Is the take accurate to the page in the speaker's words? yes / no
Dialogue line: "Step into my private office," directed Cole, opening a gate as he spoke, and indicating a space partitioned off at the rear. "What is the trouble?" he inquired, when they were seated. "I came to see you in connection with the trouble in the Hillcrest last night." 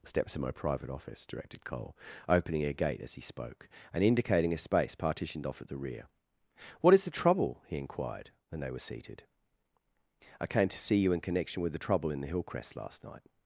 no